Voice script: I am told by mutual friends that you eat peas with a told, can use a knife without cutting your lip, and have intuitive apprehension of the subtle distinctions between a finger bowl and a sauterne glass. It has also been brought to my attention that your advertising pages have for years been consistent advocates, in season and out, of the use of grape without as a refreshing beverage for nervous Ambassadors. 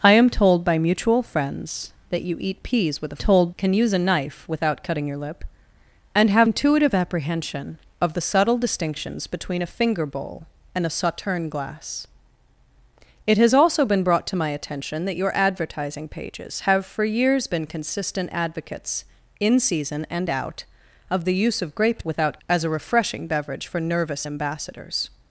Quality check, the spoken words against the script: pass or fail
pass